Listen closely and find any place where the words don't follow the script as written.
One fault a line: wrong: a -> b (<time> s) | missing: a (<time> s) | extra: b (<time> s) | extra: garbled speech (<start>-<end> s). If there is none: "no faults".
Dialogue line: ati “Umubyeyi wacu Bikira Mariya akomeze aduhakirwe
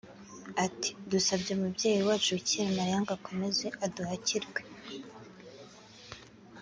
extra: Dusabye (1.1 s)
extra: ngo (3.0 s)